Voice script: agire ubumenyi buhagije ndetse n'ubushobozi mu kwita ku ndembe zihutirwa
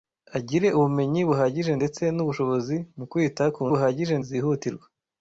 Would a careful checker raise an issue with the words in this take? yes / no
yes